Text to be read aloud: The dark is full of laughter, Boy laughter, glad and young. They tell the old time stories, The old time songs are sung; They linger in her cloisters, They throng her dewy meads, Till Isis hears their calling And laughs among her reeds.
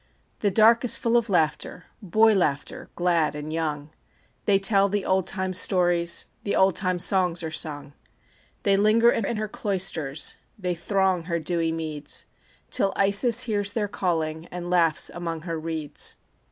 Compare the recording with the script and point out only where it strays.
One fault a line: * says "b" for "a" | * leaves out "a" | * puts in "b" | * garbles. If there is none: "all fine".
* puts in "in"